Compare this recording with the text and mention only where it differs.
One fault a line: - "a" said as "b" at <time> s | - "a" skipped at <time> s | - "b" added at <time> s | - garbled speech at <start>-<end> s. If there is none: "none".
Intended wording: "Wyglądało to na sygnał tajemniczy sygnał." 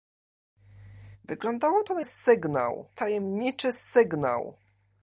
none